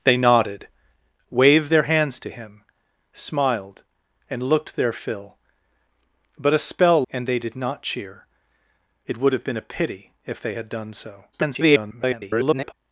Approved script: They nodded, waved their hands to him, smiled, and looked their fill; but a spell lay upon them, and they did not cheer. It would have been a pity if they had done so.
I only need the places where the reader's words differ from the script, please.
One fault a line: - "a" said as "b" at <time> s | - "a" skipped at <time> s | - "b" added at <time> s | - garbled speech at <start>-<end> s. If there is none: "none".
- "lay upon them" skipped at 7.0 s
- garbled speech at 11.3-12.7 s